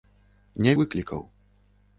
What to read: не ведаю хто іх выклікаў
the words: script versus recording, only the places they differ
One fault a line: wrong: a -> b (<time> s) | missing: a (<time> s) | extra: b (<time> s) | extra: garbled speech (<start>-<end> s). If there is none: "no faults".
missing: ведаю хто іх (0.7 s)